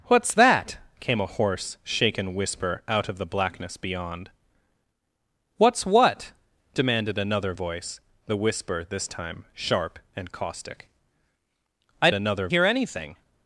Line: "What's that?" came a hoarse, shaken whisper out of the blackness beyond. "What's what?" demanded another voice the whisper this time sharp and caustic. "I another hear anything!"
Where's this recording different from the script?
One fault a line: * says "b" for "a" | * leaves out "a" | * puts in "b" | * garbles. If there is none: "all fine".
all fine